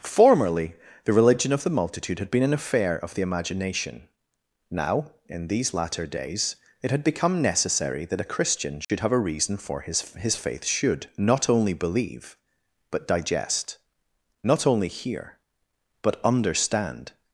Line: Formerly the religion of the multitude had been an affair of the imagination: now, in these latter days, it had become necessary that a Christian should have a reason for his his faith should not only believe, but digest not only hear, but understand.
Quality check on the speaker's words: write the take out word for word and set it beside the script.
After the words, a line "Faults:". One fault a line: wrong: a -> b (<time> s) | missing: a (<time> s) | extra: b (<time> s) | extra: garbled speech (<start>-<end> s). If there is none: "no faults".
Formerly the religion of the multitude had been an affair of the imagination: now, in these latter days, it had become necessary that a Christian should have a reason for his his faith should not only believe, but digest not only hear, but understand.
Faults:
no faults